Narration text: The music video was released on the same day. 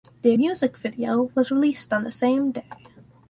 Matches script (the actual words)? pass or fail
pass